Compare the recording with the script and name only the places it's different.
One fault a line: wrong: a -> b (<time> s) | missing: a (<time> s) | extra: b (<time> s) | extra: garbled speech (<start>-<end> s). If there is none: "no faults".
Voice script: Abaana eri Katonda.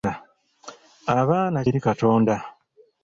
no faults